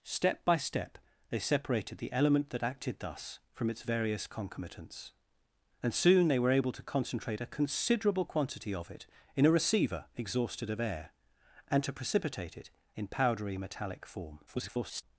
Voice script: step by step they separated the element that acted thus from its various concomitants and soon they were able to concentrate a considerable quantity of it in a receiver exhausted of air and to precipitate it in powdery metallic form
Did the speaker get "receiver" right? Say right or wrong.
right